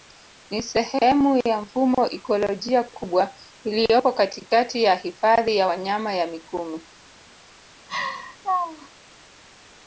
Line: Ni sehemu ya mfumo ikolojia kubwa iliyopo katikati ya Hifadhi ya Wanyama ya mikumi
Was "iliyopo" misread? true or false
false